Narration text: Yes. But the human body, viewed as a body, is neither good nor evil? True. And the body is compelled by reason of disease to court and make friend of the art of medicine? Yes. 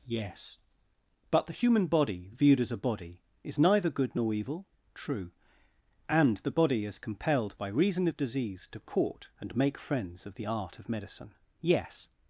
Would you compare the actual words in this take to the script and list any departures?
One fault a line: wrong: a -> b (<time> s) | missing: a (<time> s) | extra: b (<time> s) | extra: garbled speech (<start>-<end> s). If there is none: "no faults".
wrong: friend -> friends (9.8 s)